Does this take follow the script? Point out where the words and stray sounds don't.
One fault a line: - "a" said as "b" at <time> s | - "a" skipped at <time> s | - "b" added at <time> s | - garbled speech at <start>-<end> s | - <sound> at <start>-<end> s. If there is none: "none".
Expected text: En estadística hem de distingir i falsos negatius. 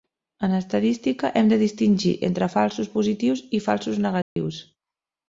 - "entre falsos positius" added at 2.3 s
- dropout at 4.2-4.4 s